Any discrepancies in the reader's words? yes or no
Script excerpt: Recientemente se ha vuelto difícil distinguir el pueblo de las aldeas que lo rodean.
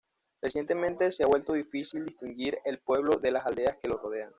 no